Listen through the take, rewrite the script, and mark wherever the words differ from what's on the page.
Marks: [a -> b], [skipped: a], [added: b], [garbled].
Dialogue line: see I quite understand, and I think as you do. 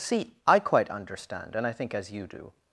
see I quite understand, and I think as you do.